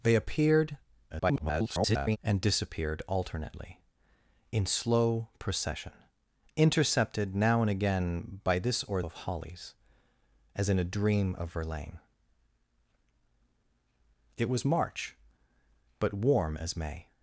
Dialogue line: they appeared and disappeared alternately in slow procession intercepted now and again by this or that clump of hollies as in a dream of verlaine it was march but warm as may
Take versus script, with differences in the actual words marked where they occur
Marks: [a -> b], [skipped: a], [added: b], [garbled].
they appeared [garbled] and disappeared alternately in slow procession intercepted now and again by this or [skipped: that clump] of hollies as in a dream of verlaine it was march but warm as may